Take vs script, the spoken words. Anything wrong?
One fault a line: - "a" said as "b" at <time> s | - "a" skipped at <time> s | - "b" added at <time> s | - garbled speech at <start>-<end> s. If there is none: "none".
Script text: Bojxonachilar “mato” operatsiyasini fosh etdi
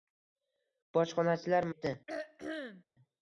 - "mato operatsiyasini fosh" skipped at 1.7 s